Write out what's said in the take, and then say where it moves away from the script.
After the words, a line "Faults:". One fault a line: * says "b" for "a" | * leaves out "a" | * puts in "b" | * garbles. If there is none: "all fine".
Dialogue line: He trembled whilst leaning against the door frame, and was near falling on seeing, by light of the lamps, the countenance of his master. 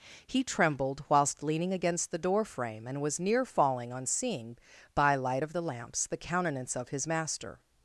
He trembled whilst leaning against the door frame, and was near falling on seeing, by light of the lamps, the countenance of his master.
Faults:
all fine